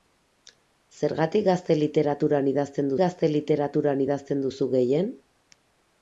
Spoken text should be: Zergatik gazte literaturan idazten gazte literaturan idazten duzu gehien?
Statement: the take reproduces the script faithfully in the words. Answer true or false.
true